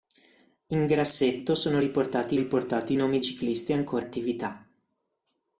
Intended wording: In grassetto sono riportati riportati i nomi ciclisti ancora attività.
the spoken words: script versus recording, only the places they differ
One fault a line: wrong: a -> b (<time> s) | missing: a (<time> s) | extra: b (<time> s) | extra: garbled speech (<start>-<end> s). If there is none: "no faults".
no faults